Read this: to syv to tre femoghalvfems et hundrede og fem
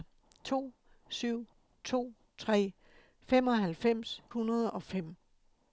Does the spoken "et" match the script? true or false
false